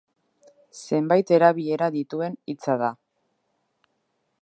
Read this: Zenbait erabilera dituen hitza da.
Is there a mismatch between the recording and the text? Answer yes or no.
no